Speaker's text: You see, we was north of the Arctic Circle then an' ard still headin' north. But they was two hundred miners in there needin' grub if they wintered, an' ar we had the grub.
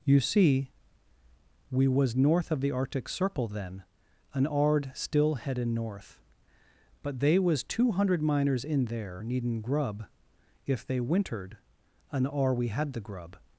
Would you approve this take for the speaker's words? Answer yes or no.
yes